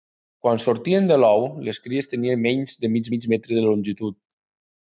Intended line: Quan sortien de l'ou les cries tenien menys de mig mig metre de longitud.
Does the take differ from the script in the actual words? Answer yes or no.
no